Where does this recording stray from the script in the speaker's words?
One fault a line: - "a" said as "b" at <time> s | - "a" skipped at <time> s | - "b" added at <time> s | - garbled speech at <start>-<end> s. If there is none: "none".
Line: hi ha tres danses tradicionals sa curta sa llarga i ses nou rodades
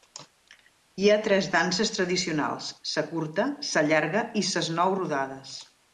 none